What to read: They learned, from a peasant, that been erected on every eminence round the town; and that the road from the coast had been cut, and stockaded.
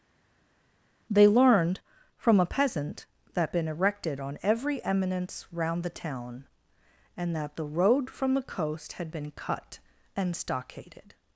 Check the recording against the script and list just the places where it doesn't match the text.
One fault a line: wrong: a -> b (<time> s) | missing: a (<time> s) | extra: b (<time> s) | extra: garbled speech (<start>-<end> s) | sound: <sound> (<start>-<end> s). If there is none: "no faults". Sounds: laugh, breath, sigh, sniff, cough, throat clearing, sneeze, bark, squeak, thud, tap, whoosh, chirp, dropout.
no faults